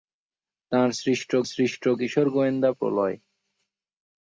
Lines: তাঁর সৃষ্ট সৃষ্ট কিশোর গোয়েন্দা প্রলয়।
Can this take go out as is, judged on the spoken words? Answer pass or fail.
pass